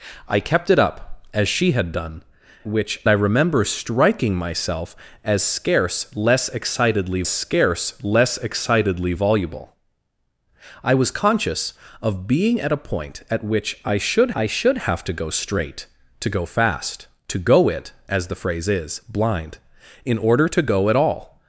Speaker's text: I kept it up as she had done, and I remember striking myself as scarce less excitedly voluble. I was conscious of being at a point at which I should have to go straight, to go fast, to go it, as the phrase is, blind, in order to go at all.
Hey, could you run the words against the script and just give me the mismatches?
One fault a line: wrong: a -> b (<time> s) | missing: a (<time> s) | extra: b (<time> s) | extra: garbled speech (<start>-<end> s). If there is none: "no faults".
wrong: and -> which (2.7 s)
extra: scarce less excitedly (7.3 s)
extra: I should (14.3 s)